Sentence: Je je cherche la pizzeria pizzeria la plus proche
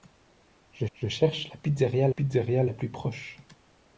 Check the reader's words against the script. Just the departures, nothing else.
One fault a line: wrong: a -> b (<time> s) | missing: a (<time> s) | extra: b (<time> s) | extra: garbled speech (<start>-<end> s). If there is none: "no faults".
no faults